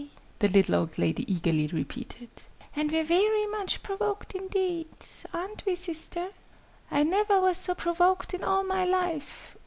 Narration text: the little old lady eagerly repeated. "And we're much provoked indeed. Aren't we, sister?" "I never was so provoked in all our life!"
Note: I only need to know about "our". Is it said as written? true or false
false